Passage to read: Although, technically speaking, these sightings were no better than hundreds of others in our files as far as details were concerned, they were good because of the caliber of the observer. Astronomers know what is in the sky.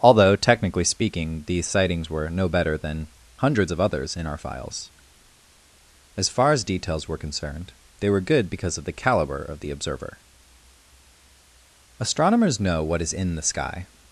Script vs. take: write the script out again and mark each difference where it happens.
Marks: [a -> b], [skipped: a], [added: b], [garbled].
Although, technically speaking, these sightings were no better than hundreds of others in our files as far as details were concerned, they were good because of the caliber of the observer. Astronomers know what is in the sky.